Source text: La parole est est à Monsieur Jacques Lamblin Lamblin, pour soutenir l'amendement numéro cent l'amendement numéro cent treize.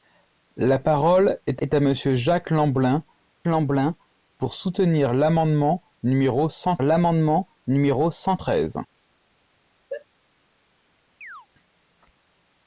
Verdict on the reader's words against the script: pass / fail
pass